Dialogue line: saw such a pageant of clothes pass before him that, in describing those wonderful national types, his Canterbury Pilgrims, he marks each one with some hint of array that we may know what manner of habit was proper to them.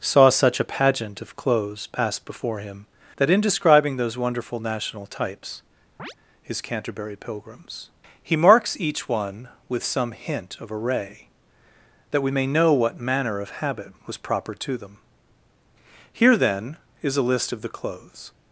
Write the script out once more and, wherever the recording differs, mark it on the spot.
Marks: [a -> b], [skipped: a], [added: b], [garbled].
saw such a pageant of clothes pass before him that, in describing those wonderful national types, his Canterbury Pilgrims, he marks each one with some hint of array that we may know what manner of habit was proper to them. [added: Here then is a list of the clothes]